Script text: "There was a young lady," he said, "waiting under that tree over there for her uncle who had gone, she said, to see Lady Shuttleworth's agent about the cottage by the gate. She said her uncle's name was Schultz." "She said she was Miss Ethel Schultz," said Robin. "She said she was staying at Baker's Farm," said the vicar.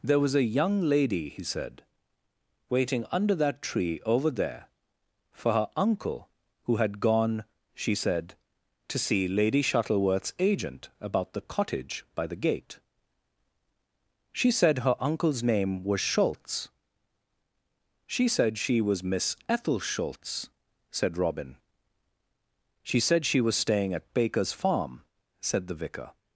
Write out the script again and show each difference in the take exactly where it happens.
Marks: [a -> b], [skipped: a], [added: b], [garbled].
"There was a young lady," he said, "waiting under that tree over there for her uncle who had gone, she said, to see Lady Shuttleworth's agent about the cottage by the gate. She said her uncle's name was Schultz." "She said she was Miss Ethel Schultz," said Robin. "She said she was staying at Baker's Farm," said the vicar.